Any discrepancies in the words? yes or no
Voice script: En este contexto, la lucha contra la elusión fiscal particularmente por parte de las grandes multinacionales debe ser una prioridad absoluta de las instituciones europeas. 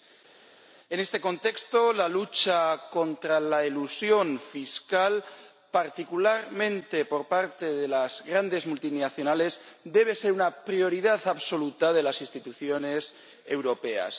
no